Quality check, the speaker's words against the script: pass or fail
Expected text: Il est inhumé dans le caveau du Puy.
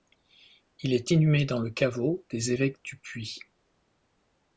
fail